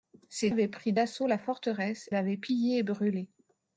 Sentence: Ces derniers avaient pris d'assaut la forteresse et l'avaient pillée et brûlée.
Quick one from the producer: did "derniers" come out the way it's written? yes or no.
no